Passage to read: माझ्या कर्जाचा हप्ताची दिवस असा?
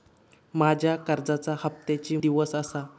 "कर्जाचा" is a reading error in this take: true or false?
false